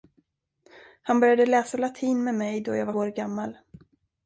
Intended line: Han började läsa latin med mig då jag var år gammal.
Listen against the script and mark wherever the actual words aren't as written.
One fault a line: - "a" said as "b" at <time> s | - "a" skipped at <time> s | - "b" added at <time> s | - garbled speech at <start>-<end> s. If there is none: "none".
none